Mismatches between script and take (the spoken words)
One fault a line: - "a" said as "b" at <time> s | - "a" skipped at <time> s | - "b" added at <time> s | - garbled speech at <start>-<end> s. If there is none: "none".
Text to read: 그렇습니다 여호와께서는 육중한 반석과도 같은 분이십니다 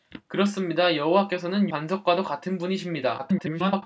- "육중한" skipped at 1.7 s
- garbled speech at 3.2-3.8 s